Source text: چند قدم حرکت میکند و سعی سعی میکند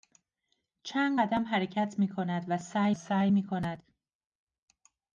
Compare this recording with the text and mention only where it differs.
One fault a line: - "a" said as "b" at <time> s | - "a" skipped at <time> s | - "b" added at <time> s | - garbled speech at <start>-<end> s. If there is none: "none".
none